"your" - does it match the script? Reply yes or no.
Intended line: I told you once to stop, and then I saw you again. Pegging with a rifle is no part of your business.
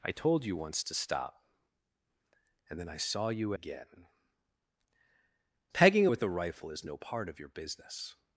yes